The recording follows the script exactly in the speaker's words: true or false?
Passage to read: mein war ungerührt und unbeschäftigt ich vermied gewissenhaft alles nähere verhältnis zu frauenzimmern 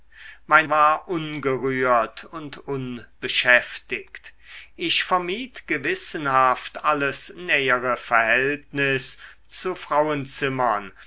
true